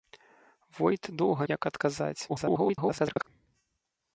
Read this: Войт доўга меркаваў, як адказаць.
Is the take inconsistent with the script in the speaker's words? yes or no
yes